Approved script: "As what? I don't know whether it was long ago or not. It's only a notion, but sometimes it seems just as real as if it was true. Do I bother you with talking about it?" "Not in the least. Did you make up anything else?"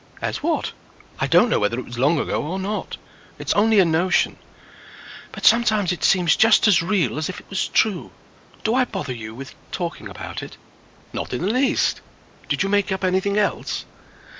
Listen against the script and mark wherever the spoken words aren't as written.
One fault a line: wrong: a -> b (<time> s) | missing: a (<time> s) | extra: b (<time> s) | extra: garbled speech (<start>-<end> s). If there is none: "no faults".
no faults